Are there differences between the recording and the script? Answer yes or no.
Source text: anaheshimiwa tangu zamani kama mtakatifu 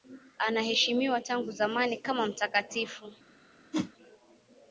no